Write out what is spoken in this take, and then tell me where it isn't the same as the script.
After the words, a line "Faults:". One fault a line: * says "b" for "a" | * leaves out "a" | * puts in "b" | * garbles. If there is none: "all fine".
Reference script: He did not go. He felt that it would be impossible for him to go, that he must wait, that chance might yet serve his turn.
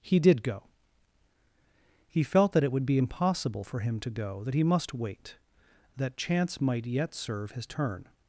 He did go. He felt that it would be impossible for him to go, that he must wait, that chance might yet serve his turn.
Faults:
* leaves out "not"